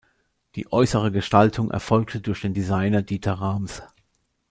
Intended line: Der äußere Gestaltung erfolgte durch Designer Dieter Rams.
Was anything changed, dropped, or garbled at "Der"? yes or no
yes